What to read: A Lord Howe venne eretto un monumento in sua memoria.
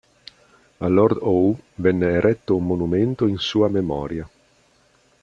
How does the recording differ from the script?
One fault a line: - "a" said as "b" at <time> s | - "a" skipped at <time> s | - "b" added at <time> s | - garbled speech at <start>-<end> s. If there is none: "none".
none